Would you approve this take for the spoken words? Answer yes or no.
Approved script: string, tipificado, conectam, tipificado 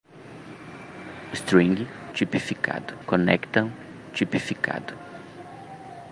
yes